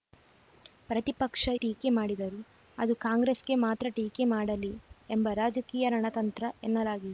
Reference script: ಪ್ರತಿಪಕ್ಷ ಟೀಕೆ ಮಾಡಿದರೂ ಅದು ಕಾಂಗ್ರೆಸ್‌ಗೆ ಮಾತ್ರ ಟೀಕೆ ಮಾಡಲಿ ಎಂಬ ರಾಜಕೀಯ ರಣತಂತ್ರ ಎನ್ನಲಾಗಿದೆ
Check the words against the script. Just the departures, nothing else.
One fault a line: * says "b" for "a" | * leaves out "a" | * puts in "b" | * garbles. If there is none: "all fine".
all fine